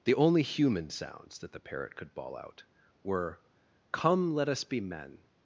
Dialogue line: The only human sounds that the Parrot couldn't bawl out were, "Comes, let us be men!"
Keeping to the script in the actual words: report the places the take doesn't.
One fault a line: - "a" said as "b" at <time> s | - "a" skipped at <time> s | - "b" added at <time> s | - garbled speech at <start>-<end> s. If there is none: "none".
- "couldn't" said as "could" at 1.9 s
- "Comes" said as "Come" at 3.9 s